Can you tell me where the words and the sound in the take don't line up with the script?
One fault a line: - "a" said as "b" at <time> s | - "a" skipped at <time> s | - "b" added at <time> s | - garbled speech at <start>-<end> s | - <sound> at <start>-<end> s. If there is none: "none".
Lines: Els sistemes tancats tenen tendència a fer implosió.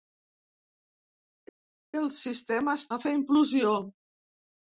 - "tancats tenen tendència" skipped at 2.9 s